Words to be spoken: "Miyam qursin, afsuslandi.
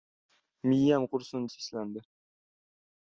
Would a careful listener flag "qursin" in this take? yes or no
no